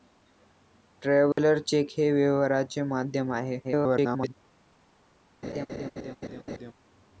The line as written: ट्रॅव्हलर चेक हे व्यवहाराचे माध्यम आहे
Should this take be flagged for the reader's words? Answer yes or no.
yes